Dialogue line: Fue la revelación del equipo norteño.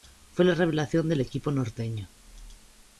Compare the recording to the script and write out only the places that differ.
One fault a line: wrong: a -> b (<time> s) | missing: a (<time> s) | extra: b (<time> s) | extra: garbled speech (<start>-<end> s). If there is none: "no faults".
no faults